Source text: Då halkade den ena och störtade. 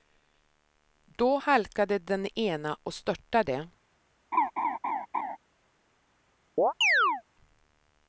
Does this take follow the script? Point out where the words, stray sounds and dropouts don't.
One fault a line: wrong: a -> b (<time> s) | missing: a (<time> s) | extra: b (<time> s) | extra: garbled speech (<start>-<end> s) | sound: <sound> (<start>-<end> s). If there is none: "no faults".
sound: laugh (4.3-5.4 s)
sound: chirp (6.6-7.2 s)